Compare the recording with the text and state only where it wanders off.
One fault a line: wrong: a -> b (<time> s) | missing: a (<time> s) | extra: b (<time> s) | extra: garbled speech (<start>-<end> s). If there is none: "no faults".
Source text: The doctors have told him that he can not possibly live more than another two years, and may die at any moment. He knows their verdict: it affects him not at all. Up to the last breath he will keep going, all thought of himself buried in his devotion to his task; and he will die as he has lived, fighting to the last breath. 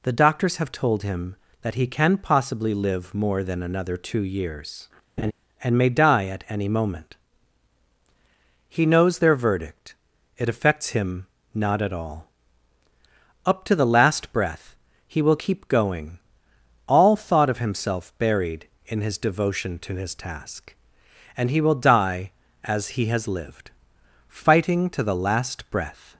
missing: not (2.2 s)